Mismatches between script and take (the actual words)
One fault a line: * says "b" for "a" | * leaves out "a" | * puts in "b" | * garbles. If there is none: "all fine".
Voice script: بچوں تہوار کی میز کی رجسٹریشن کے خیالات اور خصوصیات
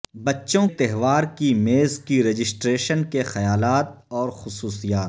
all fine